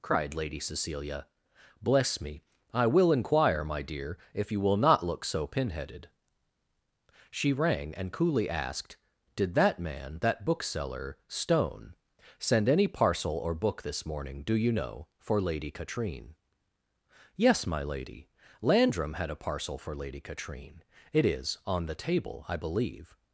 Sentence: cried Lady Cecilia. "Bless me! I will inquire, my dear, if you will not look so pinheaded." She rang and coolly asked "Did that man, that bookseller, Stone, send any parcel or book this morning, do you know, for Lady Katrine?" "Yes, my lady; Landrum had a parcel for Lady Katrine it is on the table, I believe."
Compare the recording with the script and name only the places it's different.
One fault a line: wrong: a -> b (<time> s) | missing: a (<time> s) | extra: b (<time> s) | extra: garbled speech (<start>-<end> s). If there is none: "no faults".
no faults